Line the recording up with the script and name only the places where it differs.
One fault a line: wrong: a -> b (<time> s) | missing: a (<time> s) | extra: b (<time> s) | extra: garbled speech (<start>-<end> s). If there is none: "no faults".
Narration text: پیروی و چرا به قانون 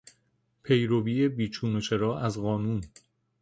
extra: بیچون (1.3 s)
wrong: به -> از (2.2 s)